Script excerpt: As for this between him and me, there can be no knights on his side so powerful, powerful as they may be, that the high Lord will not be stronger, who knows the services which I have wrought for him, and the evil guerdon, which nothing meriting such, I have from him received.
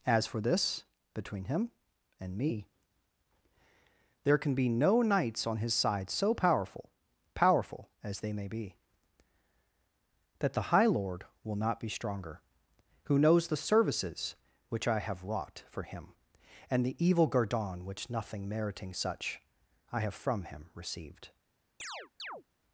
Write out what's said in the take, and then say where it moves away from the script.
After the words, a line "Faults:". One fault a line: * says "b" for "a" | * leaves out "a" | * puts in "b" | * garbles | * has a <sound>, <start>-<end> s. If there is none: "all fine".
As for this between him and me, there can be no knights on his side so powerful, powerful as they may be, that the high Lord will not be stronger, who knows the services which I have wrought for him, and the evil guerdon, which nothing meriting such, I have from him received.
Faults:
* has a chirp, 21.8-22.4 s